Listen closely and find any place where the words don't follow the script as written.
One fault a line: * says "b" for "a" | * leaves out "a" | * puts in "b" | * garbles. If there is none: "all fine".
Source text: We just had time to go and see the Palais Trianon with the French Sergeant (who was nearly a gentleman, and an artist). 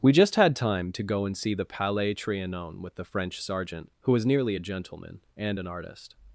all fine